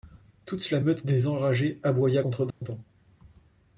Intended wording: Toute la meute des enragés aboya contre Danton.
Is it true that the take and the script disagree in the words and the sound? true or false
true